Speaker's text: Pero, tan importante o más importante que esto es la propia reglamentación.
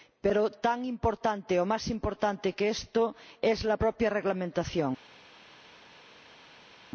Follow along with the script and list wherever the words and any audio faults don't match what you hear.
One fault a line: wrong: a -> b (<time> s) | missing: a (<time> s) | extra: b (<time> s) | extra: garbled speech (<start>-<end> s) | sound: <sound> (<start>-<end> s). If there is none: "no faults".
no faults